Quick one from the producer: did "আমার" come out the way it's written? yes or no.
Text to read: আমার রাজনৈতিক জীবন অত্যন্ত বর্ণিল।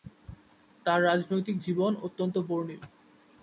no